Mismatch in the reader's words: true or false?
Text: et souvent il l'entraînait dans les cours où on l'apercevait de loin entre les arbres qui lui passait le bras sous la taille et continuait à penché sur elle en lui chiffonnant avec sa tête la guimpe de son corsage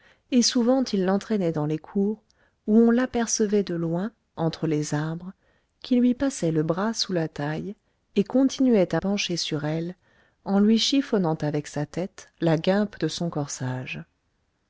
false